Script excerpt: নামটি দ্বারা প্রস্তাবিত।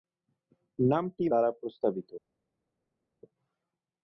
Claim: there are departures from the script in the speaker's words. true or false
false